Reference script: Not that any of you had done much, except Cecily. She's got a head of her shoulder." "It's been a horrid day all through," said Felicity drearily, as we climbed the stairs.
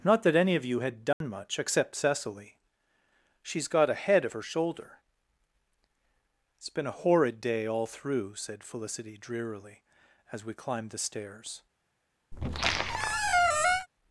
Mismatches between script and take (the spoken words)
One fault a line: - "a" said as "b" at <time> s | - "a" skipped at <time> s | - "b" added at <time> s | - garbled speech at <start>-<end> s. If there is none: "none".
none